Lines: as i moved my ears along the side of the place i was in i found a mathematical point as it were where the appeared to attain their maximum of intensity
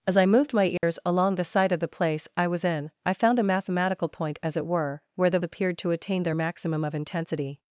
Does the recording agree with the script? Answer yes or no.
yes